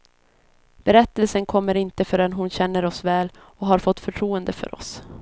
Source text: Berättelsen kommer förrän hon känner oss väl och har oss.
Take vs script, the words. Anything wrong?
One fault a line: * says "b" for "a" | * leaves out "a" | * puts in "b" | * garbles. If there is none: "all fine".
* puts in "inte"
* puts in "fått förtroende för"